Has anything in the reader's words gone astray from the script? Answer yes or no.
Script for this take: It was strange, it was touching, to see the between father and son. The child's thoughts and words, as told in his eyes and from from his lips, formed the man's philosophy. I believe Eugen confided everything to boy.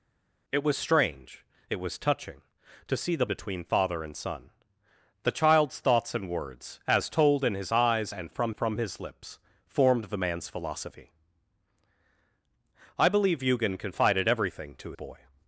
no